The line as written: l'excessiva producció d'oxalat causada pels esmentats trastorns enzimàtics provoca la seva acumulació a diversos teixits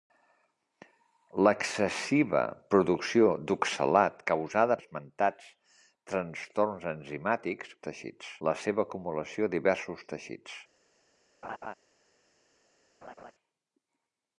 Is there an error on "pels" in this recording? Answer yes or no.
yes